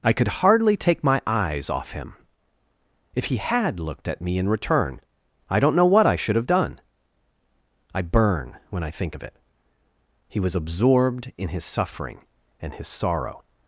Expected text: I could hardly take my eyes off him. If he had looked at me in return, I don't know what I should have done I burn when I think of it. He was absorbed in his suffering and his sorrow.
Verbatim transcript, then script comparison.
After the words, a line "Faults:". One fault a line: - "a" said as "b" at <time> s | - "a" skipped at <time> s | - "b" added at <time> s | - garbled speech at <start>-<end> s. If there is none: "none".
I could hardly take my eyes off him. If he had looked at me in return, I don't know what I should have done I burn when I think of it. He was absorbed in his suffering and his sorrow.
Faults:
none